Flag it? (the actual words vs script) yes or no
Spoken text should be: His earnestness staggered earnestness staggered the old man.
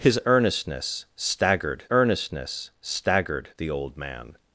no